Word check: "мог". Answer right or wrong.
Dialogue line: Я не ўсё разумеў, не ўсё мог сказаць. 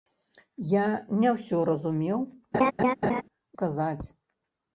wrong